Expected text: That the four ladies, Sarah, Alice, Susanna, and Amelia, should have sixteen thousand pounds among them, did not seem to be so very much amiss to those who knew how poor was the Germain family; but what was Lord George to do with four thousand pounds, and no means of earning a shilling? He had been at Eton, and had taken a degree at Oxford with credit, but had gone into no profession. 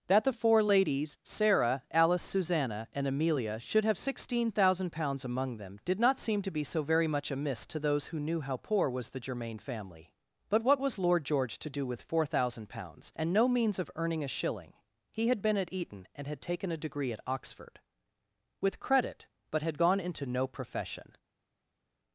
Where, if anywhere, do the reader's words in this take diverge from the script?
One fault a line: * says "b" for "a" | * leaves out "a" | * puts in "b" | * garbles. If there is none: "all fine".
all fine